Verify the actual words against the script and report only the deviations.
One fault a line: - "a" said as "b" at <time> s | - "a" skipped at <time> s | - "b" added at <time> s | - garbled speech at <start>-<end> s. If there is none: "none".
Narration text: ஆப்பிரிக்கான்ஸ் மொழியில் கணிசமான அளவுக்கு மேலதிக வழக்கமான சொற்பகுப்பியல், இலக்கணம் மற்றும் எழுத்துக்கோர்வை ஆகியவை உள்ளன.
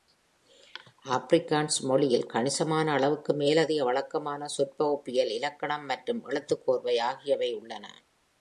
none